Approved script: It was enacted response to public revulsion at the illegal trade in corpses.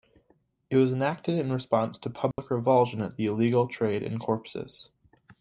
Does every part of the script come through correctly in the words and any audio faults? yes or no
no